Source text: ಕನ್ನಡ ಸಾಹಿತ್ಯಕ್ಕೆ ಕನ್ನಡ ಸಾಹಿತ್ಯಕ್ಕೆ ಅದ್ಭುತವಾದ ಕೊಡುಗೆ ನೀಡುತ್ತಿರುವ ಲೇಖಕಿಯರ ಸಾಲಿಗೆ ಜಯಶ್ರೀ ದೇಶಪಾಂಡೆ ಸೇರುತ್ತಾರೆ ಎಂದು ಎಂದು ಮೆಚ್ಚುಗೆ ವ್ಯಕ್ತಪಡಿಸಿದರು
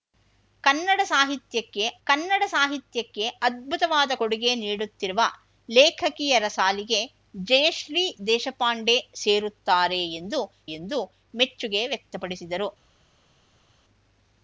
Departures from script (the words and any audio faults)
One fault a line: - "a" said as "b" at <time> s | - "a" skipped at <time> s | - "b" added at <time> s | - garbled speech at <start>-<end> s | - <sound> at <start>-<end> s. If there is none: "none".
none